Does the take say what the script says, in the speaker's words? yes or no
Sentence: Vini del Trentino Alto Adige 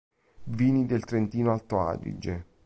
yes